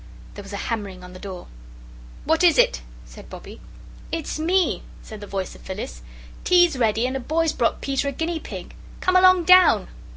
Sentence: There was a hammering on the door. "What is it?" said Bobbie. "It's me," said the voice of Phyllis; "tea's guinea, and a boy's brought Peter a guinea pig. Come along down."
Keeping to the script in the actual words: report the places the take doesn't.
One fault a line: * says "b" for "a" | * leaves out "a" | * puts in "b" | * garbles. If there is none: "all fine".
* says "ready" for "guinea"